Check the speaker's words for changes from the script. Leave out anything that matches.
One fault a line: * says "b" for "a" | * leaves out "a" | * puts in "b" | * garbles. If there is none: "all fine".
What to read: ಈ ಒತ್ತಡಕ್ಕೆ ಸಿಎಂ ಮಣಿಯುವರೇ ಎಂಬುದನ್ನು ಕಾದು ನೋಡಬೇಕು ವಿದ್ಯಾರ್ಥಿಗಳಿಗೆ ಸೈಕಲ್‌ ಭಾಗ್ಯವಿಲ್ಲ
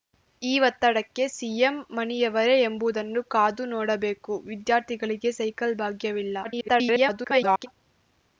* garbles